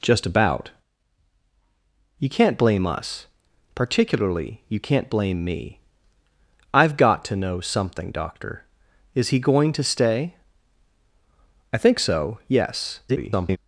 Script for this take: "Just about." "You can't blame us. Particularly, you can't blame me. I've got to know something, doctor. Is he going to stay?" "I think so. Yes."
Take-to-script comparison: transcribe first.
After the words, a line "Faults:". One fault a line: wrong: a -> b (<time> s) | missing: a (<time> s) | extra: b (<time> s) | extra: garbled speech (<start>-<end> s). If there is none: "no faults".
"Just about." "You can't blame us. Particularly, you can't blame me. I've got to know something, doctor. Is he going to stay?" "I think so. Yes." [garbled]
Faults:
extra: garbled speech (13.1-13.6 s)